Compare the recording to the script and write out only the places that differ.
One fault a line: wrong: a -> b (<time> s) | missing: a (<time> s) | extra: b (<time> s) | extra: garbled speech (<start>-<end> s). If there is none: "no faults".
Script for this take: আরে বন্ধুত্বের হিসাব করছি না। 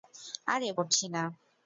missing: বন্ধুত্বের হিসাব (0.7 s)